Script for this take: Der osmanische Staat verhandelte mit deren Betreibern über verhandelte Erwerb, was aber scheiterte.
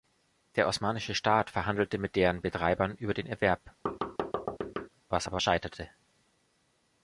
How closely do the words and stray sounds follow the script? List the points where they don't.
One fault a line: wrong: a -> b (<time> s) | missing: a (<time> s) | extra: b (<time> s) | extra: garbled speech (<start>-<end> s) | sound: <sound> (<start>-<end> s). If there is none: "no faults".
wrong: verhandelte -> den (3.1 s)
sound: thud (3.9-4.9 s)